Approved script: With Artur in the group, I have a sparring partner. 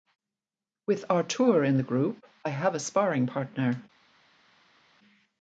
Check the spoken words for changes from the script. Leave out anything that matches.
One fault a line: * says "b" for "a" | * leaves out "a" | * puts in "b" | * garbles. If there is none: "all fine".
all fine